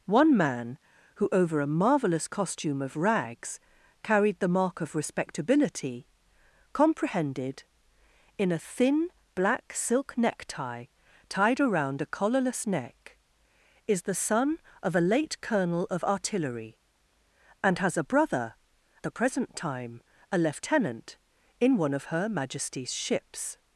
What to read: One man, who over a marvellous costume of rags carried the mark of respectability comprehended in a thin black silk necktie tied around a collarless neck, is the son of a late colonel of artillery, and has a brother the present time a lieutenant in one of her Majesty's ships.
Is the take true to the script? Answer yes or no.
yes